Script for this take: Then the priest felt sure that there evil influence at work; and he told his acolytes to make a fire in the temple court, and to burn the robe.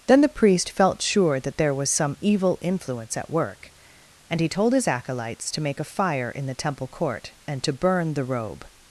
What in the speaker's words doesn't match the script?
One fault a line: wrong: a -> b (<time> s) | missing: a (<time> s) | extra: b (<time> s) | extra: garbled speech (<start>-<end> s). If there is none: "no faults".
extra: was some (1.7 s)